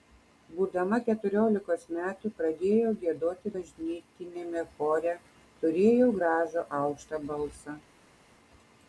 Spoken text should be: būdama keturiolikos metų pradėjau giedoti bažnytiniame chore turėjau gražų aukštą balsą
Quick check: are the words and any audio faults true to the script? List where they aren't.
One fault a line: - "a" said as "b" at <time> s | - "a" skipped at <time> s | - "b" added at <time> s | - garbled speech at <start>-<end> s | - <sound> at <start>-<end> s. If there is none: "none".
none